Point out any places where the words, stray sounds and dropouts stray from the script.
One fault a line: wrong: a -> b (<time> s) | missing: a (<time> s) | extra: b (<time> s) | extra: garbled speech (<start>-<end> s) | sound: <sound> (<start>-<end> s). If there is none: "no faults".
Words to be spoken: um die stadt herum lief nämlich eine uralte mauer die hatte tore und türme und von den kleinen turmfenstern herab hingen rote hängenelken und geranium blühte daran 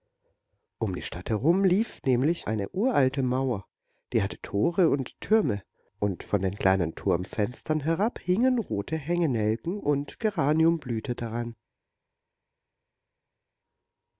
no faults